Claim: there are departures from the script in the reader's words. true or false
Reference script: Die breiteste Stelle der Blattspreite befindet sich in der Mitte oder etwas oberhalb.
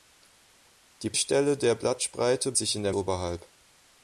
true